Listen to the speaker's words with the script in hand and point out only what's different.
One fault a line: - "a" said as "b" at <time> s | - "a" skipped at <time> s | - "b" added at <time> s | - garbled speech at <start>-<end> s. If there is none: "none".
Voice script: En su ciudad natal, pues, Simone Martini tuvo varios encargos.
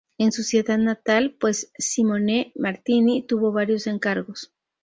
none